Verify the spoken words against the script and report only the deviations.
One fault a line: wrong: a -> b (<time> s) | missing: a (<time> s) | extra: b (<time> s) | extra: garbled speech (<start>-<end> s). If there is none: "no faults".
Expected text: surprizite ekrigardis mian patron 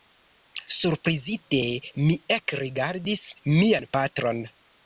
extra: mi (2.0 s)